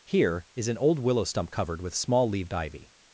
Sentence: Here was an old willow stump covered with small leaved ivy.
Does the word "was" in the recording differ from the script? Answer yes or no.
yes